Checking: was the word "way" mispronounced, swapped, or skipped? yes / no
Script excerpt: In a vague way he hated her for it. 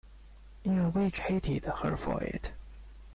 yes